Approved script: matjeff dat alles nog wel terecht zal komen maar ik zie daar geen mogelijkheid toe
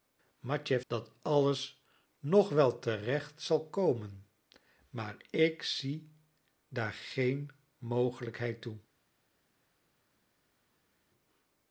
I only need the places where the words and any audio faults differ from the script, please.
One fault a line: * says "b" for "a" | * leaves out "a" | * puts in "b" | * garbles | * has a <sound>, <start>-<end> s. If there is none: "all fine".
all fine